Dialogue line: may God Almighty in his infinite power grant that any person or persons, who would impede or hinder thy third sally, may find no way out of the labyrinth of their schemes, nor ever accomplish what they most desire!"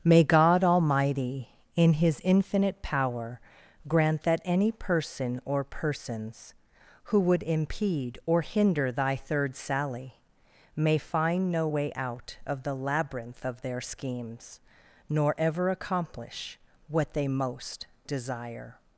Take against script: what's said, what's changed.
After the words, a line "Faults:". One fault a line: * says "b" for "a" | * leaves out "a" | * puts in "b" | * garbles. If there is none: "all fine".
may God Almighty in his infinite power grant that any person or persons, who would impede or hinder thy third sally, may find no way out of the labyrinth of their schemes, nor ever accomplish what they most desire!"
Faults:
all fine